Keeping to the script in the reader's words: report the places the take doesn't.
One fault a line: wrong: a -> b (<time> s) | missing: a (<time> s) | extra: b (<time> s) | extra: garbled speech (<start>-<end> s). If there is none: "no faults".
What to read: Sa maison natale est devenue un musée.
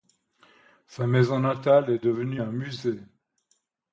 no faults